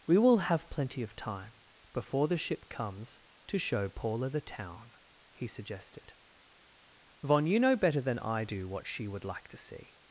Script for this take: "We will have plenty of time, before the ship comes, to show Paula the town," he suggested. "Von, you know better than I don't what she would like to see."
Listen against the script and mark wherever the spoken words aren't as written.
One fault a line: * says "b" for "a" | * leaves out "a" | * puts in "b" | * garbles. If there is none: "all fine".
* says "do" for "don't"